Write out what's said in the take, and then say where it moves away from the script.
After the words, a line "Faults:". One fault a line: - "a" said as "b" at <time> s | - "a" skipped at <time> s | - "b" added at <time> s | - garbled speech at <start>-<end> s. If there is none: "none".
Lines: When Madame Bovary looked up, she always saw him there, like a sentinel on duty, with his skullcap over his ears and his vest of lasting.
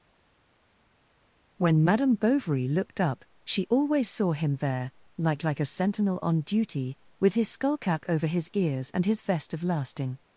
When Madame Bovary looked up, she always saw him there, like like a sentinel on duty, with his skullcap over his ears and his vest of lasting.
Faults:
- "like" added at 5.4 s